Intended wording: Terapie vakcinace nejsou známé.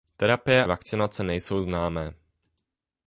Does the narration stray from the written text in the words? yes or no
no